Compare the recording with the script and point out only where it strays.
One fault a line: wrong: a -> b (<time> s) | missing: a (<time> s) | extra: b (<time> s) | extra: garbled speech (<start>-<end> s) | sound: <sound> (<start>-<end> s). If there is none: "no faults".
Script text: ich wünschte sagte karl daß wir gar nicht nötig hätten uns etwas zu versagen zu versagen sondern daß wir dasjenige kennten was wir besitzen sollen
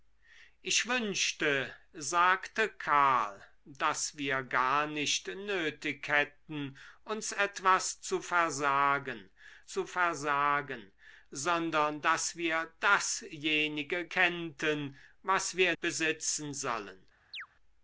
sound: chirp (17.3-17.5 s)